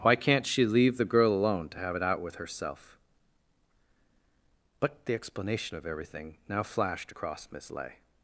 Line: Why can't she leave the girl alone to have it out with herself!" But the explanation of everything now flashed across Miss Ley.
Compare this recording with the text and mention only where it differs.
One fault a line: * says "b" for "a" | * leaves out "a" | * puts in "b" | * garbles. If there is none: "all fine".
all fine